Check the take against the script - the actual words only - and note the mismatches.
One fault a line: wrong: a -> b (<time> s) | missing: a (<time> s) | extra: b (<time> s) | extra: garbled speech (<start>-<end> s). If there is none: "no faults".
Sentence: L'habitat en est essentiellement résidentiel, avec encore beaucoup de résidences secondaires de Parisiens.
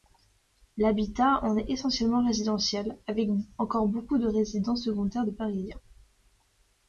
no faults